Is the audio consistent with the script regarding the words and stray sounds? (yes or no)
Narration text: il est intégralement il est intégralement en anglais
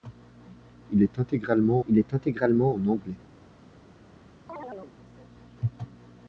no